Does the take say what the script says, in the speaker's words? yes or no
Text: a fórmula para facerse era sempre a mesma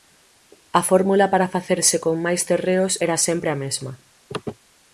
no